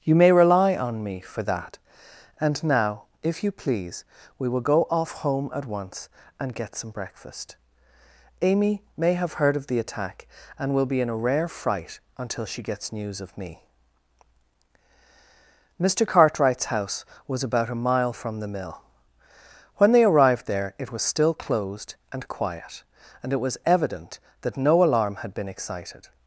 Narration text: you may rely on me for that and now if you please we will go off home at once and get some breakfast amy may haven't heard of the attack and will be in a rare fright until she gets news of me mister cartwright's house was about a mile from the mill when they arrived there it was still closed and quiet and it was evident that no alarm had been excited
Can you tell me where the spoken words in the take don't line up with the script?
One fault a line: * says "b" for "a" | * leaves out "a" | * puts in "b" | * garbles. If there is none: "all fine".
* says "have" for "haven't"